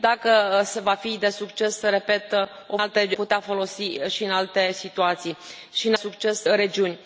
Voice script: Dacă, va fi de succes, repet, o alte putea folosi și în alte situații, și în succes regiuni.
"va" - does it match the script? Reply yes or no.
yes